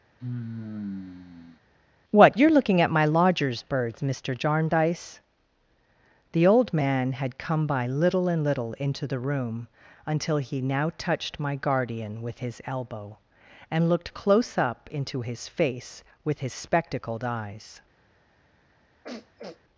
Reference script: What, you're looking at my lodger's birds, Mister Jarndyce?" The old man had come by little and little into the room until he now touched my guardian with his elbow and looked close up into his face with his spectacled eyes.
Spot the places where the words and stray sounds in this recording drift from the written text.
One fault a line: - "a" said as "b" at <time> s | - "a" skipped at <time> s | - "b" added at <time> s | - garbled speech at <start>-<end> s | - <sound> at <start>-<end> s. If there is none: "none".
- sigh at 0.2-1.6 s
- sniff at 19.0-19.6 s